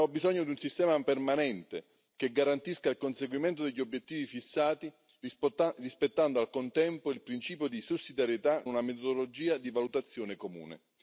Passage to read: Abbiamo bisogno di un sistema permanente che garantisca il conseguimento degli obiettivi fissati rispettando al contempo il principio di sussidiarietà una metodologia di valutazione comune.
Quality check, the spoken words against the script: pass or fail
pass